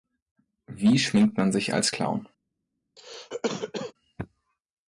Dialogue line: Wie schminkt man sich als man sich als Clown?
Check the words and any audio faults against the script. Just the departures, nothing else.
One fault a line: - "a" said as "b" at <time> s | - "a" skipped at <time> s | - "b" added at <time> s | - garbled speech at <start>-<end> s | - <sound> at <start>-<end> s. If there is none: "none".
- "man sich als" skipped at 1.9 s
- cough at 3.0-3.9 s